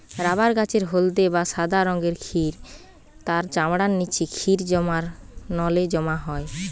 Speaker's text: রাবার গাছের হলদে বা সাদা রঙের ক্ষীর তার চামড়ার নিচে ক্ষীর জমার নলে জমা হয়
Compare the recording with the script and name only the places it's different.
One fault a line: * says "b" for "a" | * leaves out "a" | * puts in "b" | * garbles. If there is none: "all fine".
all fine